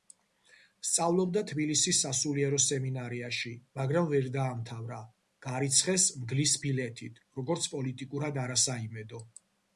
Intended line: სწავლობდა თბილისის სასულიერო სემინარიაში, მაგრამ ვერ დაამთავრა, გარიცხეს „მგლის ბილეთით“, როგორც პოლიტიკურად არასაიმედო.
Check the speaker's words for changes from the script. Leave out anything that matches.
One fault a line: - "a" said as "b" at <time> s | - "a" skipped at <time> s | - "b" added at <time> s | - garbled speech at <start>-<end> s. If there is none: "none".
none